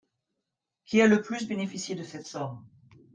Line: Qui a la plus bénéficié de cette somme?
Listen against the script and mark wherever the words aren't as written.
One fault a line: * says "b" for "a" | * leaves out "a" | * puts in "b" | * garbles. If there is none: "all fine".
* says "le" for "la"